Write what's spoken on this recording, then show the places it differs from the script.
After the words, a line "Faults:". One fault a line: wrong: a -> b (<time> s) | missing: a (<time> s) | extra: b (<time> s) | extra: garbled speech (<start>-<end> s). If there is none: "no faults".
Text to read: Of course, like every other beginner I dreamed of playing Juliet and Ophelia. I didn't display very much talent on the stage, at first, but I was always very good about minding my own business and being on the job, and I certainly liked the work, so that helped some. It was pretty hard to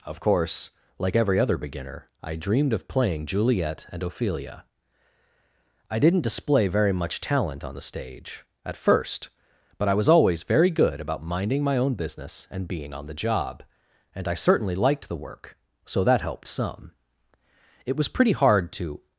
Of course, like every other beginner I dreamed of playing Juliet and Ophelia. I didn't display very much talent on the stage, at first, but I was always very good about minding my own business and being on the job, and I certainly liked the work, so that helped some. It was pretty hard to
Faults:
no faults